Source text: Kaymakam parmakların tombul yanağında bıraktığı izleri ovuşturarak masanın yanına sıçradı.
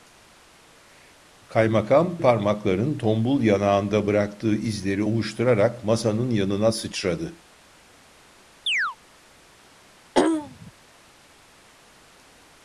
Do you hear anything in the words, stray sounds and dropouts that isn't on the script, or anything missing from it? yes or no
yes